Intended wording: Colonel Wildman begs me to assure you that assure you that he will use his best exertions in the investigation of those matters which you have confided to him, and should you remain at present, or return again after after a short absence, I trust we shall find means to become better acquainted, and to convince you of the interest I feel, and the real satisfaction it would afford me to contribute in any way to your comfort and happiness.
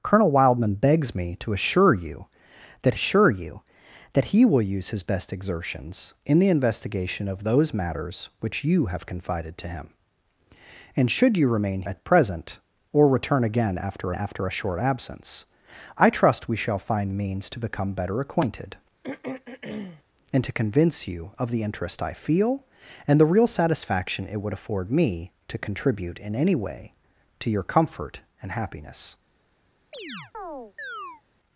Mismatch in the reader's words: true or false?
false